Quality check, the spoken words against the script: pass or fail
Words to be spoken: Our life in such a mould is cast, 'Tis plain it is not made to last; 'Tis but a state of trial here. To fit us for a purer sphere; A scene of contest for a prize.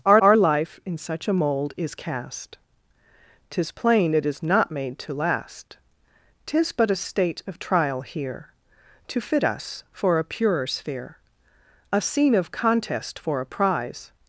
fail